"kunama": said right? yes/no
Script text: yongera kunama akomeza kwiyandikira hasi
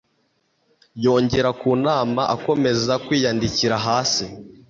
yes